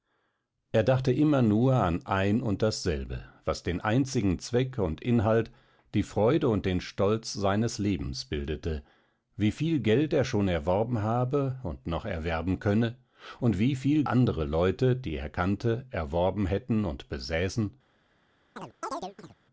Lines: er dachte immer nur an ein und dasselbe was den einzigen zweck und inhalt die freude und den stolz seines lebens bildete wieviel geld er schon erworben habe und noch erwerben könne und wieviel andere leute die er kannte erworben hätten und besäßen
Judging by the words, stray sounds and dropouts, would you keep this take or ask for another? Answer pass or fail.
fail